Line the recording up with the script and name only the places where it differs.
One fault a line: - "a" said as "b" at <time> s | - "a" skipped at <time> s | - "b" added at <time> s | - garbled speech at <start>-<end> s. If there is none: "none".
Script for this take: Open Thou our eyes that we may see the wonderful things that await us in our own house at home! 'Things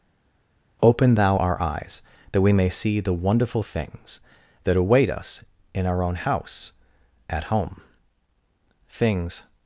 none